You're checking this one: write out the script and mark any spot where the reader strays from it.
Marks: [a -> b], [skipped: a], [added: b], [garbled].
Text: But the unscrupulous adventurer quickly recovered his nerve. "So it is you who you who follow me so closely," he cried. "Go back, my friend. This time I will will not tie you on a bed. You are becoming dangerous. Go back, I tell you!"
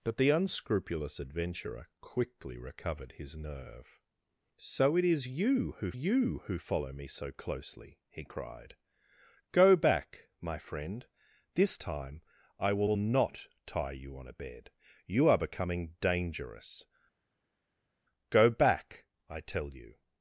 But the unscrupulous adventurer quickly recovered his nerve. "So it is you who you who follow me so closely," he cried. "Go back, my friend. This time I will will not tie you on a bed. You are becoming dangerous. Go back, I tell you!"